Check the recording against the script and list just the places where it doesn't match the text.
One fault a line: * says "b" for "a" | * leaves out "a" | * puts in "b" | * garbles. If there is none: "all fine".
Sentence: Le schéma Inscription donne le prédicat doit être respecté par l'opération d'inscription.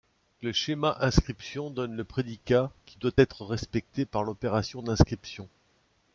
* puts in "qui"